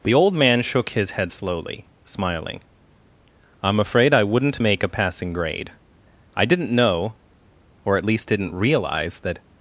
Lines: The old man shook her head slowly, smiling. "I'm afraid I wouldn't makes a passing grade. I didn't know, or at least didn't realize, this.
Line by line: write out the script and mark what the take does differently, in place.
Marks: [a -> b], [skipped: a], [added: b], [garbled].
The old man shook [her -> his] head slowly, smiling. "I'm afraid I wouldn't [makes -> make] a passing grade. I didn't know, or at least didn't realize, [this. -> that]